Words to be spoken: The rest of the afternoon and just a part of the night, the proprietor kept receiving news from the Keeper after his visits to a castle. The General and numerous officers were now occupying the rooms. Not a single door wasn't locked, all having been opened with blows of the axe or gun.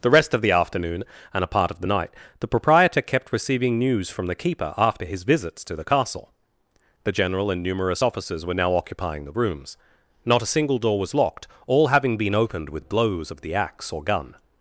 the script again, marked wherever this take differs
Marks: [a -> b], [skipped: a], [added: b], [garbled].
The rest of the afternoon and [skipped: just] a part of the night, the proprietor kept receiving news from the Keeper after his visits to [a -> the] castle. The General and numerous officers were now occupying the rooms. Not a single door [wasn't -> was] locked, all having been opened with blows of the axe or gun.